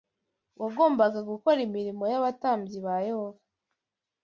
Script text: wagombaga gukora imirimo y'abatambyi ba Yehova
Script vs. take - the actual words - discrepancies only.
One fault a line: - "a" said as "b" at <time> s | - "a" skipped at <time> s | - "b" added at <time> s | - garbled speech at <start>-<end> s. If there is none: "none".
none